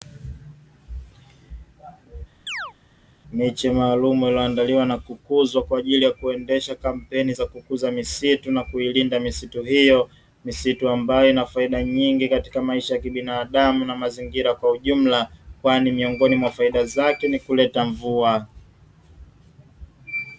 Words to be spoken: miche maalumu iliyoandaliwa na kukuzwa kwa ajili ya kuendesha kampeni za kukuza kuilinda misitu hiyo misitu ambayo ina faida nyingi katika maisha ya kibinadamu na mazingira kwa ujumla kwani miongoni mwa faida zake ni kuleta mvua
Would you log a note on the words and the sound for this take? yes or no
yes